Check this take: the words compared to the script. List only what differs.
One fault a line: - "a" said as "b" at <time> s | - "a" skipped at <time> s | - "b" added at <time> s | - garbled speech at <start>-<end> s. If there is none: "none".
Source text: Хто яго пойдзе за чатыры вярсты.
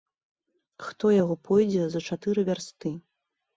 none